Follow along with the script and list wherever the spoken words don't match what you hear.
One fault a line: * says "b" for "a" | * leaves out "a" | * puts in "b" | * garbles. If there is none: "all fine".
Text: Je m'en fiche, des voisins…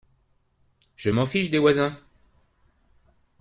all fine